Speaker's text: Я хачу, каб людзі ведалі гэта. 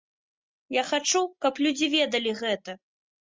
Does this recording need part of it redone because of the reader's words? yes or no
no